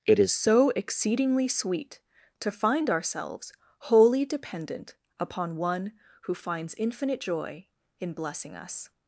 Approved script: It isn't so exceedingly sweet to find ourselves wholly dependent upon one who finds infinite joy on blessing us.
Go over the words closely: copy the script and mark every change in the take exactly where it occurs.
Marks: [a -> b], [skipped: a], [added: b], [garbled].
It [isn't -> is] so exceedingly sweet to find ourselves wholly dependent upon one who finds infinite joy [on -> in] blessing us.